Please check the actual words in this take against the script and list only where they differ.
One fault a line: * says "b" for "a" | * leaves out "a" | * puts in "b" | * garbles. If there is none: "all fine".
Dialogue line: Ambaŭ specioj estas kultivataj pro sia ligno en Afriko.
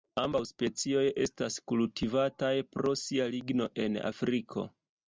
all fine